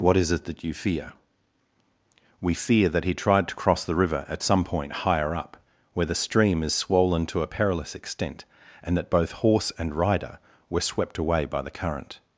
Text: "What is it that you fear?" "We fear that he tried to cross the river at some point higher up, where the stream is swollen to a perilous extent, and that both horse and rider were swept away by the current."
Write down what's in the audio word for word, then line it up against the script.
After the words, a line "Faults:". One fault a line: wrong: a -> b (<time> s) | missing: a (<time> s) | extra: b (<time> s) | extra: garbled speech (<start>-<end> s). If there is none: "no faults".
"What is it that you fear?" "We fear that he tried to cross the river at some point higher up, where the stream is swollen to a perilous extent, and that both horse and rider were swept away by the current."
Faults:
no faults